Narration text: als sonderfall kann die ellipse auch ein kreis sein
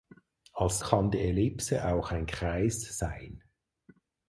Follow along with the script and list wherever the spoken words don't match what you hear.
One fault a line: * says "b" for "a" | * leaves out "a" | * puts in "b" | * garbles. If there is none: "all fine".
* leaves out "sonderfall"